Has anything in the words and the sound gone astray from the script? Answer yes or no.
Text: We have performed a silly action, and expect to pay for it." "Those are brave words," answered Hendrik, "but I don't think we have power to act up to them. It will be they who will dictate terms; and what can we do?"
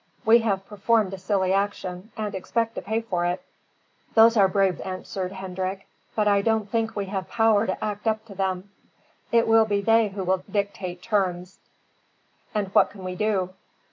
yes